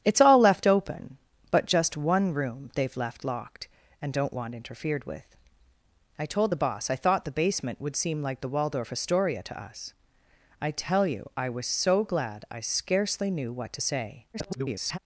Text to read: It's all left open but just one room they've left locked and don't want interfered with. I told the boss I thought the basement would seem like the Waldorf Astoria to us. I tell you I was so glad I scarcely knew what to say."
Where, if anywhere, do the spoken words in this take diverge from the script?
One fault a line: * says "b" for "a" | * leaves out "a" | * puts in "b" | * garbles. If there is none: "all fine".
* garbles